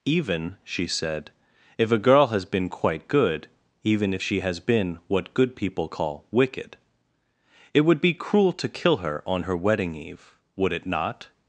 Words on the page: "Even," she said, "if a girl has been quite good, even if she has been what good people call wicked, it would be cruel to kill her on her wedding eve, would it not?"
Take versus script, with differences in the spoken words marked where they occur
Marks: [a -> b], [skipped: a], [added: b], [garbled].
"Even," she said, "if a girl has been quite good, even if she has been what good people call wicked, it would be cruel to kill her on her wedding eve, would it not?"